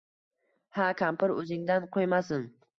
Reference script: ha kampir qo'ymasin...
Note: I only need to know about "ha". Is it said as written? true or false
true